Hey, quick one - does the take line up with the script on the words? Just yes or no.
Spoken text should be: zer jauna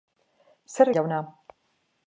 yes